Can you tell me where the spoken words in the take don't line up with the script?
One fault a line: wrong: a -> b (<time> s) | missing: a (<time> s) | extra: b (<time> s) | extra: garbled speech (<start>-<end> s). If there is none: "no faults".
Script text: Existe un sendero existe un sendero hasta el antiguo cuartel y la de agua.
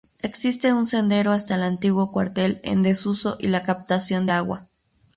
missing: existe un sendero (1.3 s)
extra: en desuso (2.6 s)
extra: captación (3.6 s)